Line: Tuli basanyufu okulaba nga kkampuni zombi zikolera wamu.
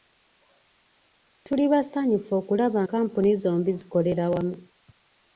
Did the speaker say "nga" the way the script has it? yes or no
no